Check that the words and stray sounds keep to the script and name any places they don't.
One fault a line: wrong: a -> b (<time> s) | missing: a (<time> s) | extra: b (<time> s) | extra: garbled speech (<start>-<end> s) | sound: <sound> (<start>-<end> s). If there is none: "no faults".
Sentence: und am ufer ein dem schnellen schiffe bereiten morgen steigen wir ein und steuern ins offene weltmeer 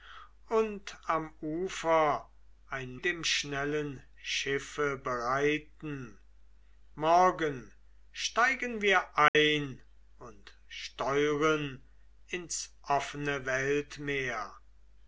sound: dropout (9.3-9.3 s)